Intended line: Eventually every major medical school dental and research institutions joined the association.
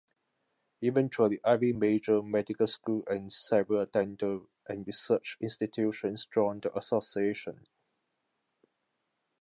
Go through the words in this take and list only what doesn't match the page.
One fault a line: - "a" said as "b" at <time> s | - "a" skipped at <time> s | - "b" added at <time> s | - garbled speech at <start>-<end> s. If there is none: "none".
- "and several" added at 3.1 s